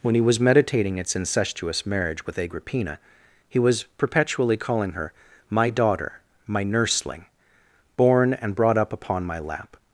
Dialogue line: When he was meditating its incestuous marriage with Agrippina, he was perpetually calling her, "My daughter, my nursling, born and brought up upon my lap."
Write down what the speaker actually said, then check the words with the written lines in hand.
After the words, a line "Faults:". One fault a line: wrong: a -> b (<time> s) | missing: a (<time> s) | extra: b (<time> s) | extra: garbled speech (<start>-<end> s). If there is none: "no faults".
When he was meditating its incestuous marriage with Agrippina, he was perpetually calling her, "My daughter, my nursling, born and brought up upon my lap."
Faults:
no faults